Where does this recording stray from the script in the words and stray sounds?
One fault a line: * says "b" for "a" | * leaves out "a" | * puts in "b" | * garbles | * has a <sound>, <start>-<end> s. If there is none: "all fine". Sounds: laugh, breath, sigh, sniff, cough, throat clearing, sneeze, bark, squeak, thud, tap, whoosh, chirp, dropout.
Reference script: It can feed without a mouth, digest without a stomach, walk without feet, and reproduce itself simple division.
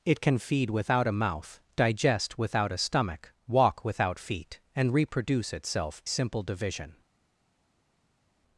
all fine